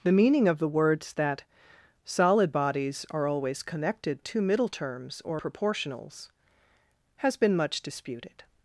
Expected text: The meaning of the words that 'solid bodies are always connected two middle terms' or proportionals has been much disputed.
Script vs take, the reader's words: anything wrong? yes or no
no